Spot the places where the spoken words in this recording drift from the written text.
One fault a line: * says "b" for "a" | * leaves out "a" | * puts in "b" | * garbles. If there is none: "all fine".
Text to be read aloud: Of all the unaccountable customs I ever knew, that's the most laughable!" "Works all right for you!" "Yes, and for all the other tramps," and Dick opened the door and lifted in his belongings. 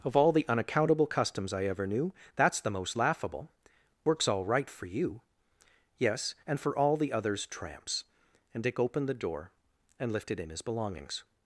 * says "others" for "other"